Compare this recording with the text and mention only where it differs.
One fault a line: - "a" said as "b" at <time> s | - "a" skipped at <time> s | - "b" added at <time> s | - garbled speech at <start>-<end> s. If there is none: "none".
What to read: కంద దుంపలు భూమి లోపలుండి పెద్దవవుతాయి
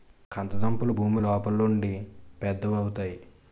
none